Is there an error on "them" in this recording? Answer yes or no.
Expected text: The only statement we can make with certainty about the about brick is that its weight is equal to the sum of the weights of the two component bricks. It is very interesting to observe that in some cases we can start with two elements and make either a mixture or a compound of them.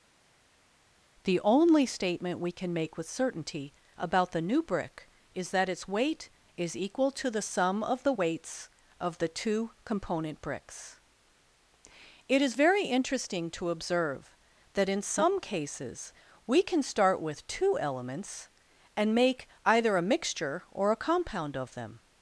no